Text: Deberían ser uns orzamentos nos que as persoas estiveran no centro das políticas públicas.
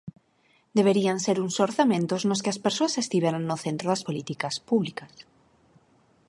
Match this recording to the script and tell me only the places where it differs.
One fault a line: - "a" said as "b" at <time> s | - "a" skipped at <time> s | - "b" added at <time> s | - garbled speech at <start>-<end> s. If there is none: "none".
none